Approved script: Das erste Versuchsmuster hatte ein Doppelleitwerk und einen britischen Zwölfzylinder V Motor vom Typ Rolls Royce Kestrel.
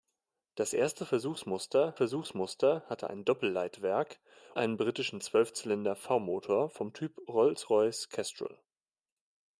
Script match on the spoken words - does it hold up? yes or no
no